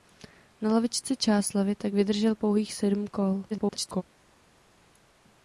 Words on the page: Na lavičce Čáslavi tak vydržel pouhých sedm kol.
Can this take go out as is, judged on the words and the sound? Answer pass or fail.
fail